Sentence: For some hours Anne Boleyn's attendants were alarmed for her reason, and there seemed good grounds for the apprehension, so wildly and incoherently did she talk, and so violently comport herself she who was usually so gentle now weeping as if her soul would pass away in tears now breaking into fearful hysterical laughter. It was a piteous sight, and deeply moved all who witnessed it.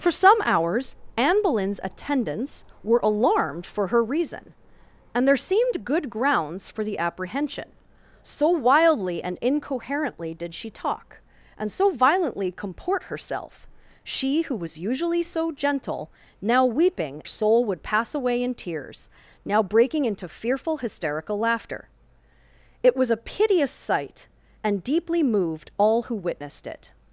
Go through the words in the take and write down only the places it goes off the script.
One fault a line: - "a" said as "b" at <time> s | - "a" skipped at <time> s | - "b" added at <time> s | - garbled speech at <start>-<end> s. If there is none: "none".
- "as if her" skipped at 17.2 s